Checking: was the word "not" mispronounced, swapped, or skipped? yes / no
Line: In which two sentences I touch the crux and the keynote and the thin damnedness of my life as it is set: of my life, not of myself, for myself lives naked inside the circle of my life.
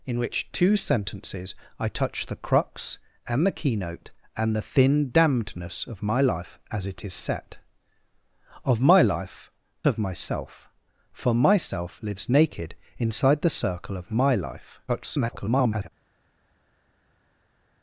yes